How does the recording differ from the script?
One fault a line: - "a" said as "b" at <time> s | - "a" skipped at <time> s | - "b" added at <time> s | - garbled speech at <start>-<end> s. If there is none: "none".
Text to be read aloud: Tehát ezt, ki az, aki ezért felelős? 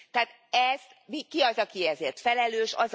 none